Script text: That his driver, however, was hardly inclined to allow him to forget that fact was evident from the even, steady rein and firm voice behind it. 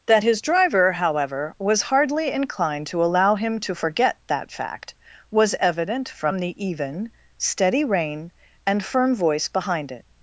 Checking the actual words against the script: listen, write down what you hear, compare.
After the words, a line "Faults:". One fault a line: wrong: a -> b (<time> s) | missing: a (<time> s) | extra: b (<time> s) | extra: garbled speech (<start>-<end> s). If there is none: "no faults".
That his driver, however, was hardly inclined to allow him to forget that fact was evident from the even, steady rein and firm voice behind it.
Faults:
no faults